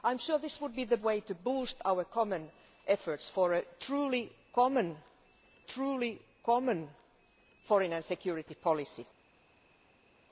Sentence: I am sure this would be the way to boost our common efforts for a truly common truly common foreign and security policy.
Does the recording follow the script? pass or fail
pass